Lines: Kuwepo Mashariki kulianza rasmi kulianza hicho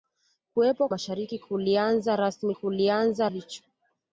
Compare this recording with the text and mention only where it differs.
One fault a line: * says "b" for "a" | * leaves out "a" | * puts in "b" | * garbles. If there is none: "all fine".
all fine